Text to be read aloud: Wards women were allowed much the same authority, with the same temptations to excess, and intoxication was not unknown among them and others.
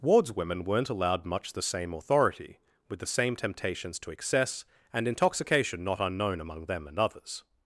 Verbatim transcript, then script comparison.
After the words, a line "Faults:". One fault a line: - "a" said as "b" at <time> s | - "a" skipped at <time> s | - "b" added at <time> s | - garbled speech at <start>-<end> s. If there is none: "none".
Wards women weren't allowed much the same authority, with the same temptations to excess, and intoxication not unknown among them and others.
Faults:
- "were" said as "weren't" at 0.6 s
- "was" skipped at 5.8 s